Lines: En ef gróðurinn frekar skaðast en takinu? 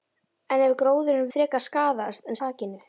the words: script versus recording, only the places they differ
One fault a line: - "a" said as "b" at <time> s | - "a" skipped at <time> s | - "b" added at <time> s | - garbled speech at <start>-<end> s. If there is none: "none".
none